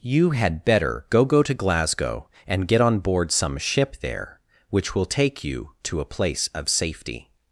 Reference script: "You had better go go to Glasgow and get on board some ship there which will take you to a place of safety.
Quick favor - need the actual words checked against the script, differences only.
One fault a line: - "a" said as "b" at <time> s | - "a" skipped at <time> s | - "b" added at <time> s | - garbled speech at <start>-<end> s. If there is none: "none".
none